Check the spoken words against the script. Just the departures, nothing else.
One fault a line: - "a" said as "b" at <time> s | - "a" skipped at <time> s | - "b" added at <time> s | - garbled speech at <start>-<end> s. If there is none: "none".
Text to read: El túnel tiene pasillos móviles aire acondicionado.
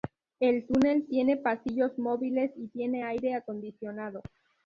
- "y tiene" added at 2.5 s